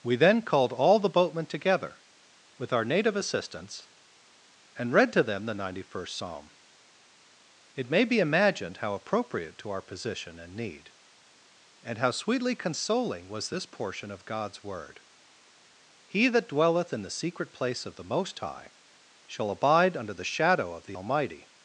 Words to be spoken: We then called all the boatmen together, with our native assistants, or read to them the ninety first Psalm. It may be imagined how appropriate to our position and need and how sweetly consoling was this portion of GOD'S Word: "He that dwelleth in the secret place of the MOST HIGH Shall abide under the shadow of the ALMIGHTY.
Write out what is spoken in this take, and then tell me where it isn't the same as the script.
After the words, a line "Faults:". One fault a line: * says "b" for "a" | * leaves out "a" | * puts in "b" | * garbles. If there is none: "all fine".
We then called all the boatmen together, with our native assistants, and read to them the ninety first Psalm. It may be imagined how appropriate to our position and need and how sweetly consoling was this portion of GOD'S Word: "He that dwelleth in the secret place of the MOST HIGH Shall abide under the shadow of the ALMIGHTY.
Faults:
* says "and" for "or"